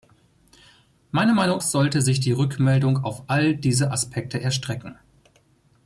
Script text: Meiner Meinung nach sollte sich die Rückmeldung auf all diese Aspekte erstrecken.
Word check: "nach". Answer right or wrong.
wrong